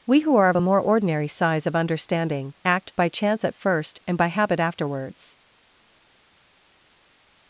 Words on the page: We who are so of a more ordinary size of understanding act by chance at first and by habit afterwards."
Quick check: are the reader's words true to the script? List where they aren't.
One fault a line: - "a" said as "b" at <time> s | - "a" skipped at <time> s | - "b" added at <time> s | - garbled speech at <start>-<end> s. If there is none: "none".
- "so" skipped at 0.5 s